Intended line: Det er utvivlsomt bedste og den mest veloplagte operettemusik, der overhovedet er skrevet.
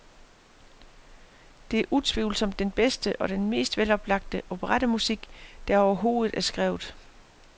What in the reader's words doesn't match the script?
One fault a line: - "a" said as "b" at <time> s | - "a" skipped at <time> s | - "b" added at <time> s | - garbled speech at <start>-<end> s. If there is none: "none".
- "den" added at 2.6 s